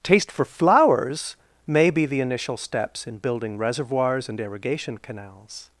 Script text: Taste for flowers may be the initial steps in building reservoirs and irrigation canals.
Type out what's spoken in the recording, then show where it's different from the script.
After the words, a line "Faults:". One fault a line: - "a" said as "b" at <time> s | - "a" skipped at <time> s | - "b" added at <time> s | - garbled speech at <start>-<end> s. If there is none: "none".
Taste for flowers may be the initial steps in building reservoirs and irrigation canals.
Faults:
none